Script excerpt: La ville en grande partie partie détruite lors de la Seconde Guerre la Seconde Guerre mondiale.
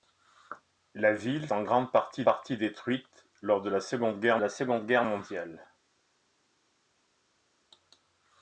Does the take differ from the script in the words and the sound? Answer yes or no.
no